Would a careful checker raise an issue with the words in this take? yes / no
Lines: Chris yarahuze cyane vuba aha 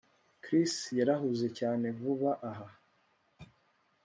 no